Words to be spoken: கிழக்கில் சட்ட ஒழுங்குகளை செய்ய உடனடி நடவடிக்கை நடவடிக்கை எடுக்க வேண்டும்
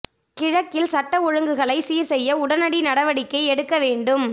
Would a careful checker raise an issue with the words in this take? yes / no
yes